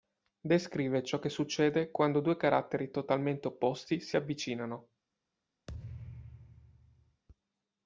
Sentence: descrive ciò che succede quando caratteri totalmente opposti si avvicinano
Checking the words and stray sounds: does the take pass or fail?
fail